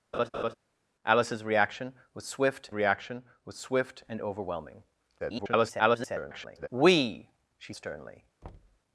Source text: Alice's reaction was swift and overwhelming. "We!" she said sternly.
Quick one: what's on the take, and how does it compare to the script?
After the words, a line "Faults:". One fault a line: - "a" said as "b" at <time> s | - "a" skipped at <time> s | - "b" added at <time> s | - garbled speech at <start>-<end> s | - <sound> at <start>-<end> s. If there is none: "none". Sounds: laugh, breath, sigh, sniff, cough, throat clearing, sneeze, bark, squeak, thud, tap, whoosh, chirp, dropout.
Alice's reaction was swift reaction was swift and overwhelming. [garbled] "We!" she sternly.
Faults:
- laugh at 0.1-0.5 s
- "reaction was swift" added at 2.7 s
- garbled speech at 5.2-6.7 s
- "said" skipped at 7.7 s
- thud at 8.4-8.8 s